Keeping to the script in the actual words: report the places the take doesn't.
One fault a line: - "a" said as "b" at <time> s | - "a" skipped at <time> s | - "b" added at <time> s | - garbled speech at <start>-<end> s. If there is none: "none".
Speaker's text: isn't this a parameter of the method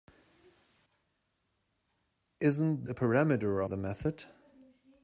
- "this" skipped at 2.9 s
- "of" skipped at 3.6 s